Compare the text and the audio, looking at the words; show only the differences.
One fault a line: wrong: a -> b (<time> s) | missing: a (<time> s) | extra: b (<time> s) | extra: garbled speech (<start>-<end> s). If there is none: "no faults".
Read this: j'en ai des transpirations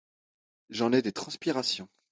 no faults